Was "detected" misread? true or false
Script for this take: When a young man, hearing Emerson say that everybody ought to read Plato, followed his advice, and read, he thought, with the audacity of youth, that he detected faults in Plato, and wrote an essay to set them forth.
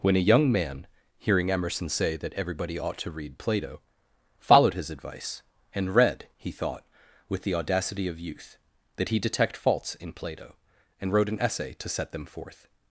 true